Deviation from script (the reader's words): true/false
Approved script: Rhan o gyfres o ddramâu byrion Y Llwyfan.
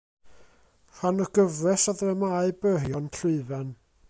false